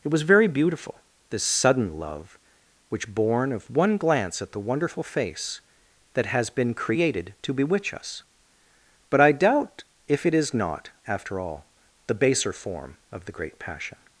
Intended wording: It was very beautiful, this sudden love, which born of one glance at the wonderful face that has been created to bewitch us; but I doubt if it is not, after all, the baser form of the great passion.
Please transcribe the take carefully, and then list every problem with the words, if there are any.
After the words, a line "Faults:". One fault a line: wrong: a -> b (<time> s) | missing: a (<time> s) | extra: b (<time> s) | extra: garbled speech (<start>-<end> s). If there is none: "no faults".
It was very beautiful, this sudden love, which born of one glance at the wonderful face that has been created to bewitch us; but I doubt if it is not, after all, the baser form of the great passion.
Faults:
no faults